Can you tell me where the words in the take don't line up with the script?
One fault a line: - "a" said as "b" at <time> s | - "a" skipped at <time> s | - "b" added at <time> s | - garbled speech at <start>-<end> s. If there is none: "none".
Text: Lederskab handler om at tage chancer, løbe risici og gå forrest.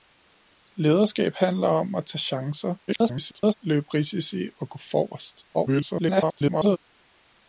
- garbled speech at 2.9-3.5 s
- garbled speech at 5.5-6.8 s